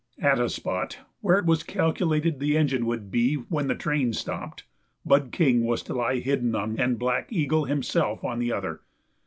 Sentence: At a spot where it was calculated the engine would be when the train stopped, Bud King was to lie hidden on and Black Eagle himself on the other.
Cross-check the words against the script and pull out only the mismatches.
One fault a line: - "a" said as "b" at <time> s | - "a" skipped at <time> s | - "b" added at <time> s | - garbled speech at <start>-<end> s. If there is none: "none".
none